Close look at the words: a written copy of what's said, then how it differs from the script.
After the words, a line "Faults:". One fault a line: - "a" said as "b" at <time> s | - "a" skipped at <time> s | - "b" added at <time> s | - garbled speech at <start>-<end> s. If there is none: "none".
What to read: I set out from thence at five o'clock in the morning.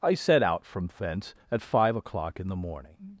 I set out from thence at five o'clock in the morning.
Faults:
none